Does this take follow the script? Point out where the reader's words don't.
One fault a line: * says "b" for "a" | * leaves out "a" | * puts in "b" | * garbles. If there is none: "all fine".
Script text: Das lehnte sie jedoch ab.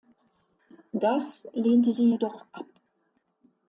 all fine